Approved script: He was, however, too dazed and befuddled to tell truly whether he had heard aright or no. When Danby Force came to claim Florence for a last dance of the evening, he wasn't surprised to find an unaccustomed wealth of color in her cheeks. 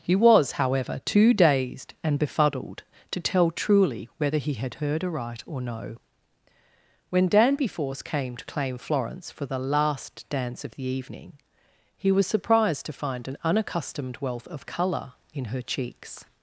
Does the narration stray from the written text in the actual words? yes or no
yes